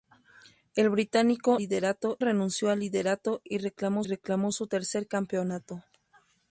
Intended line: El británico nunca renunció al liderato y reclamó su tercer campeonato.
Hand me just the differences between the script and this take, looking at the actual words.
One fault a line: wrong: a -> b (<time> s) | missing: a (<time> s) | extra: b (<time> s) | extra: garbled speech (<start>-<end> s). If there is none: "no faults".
wrong: nunca -> liderato (1.6 s)
extra: reclamó (4.0 s)